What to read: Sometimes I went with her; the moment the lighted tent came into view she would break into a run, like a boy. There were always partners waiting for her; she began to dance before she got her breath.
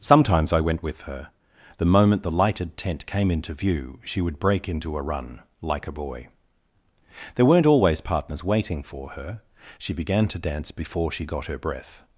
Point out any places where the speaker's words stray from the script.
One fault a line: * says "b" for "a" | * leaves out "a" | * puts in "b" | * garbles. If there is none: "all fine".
* says "weren't" for "were"